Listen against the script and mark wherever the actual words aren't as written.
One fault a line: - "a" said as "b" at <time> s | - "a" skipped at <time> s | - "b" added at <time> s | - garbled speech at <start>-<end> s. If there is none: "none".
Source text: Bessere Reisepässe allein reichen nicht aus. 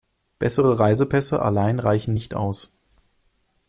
none